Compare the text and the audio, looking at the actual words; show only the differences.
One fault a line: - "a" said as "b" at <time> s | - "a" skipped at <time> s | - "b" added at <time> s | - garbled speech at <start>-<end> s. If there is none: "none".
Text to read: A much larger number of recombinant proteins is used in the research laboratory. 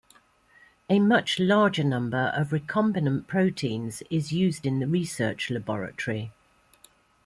none